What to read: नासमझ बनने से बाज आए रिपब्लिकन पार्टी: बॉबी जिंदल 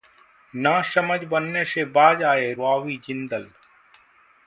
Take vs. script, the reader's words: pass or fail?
fail